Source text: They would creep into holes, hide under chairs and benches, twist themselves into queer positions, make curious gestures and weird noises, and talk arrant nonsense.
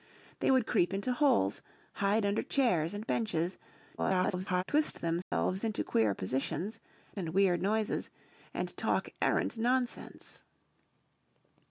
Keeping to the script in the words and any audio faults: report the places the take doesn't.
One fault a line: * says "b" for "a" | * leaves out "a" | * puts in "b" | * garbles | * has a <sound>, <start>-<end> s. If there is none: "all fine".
* garbles
* has a dropout, 5.2-5.3 s
* leaves out "make curious gestures"